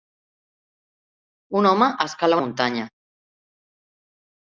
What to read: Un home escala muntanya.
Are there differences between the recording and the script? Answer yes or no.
no